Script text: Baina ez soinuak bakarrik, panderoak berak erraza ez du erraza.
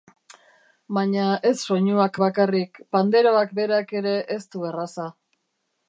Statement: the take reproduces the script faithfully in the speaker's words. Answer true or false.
false